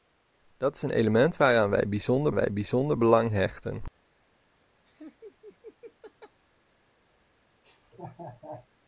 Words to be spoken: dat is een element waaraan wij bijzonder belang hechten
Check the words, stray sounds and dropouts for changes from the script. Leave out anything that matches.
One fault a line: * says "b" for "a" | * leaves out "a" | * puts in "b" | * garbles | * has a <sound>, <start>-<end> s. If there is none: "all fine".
* puts in "wij bijzonder"
* has a laugh, 4.9-6.4 s
* has a laugh, 7.6-8.7 s